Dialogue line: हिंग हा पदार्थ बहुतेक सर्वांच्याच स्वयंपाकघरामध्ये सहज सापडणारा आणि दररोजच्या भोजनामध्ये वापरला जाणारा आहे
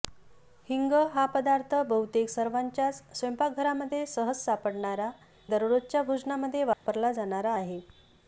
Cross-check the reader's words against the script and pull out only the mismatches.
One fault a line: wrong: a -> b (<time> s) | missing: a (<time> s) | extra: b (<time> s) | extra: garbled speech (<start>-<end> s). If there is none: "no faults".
missing: आणि (5.1 s)